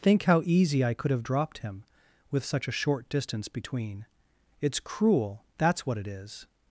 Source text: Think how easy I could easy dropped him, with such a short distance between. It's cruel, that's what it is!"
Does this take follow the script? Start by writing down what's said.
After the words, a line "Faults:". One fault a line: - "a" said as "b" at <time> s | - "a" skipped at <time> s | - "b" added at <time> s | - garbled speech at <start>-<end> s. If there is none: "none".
Think how easy I could have dropped him, with such a short distance between. It's cruel, that's what it is!"
Faults:
- "easy" said as "have" at 1.1 s